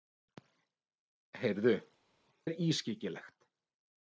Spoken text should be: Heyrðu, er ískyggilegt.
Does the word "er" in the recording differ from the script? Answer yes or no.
no